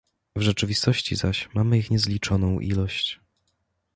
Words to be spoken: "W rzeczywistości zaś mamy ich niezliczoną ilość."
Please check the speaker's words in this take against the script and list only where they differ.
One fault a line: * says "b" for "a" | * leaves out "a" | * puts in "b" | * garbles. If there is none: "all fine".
all fine